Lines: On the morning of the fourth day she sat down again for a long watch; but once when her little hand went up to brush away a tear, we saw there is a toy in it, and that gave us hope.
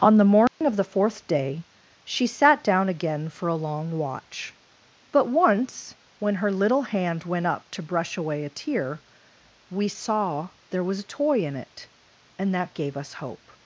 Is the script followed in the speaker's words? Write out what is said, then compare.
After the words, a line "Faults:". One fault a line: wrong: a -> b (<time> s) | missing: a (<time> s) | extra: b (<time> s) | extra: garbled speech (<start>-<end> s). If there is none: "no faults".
On the morning of the fourth day she sat down again for a long watch; but once when her little hand went up to brush away a tear, we saw there was a toy in it, and that gave us hope.
Faults:
wrong: is -> was (10.8 s)